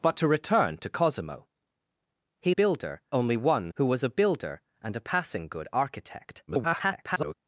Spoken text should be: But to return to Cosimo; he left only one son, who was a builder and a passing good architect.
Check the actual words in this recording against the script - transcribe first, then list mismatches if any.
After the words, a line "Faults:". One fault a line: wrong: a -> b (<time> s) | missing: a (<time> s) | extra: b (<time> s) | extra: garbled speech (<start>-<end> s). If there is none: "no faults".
But to return to Cosimo; he builder only one who was a builder and a passing good architect. [garbled]
Faults:
wrong: left -> builder (2.5 s)
missing: son (3.7 s)
extra: garbled speech (6.5-7.3 s)